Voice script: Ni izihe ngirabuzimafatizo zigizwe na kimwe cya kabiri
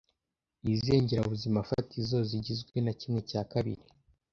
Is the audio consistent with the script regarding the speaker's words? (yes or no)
yes